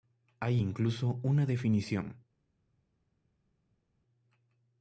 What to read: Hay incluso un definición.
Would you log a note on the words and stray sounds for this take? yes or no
yes